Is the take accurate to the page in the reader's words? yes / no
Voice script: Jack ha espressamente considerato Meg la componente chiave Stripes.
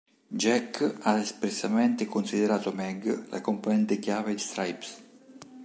yes